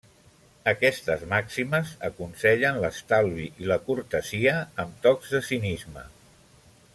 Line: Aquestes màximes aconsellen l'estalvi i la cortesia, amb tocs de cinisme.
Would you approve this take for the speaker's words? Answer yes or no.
yes